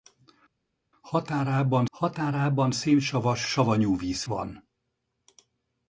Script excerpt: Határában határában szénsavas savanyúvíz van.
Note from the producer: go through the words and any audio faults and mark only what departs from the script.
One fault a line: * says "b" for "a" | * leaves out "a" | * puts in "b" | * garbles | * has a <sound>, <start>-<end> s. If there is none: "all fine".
all fine